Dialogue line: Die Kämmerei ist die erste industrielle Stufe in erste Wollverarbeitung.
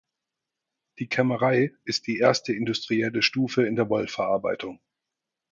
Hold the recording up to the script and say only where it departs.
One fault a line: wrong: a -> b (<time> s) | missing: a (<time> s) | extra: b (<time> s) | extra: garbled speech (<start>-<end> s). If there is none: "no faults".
wrong: erste -> der (3.8 s)